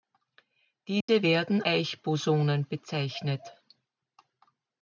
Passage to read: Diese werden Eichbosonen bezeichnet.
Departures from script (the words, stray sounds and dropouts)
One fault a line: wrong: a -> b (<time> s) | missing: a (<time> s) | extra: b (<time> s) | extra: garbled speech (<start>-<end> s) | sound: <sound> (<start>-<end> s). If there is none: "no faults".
sound: dropout (1.0-1.1 s)